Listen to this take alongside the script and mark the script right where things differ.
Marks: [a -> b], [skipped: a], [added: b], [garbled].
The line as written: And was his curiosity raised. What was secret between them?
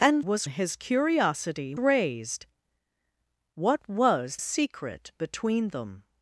And was his curiosity raised. What was secret between them?